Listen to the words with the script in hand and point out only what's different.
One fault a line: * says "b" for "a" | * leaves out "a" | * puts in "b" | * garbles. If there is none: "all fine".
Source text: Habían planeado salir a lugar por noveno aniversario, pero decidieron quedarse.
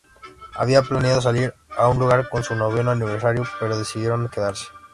* puts in "un"
* puts in "su"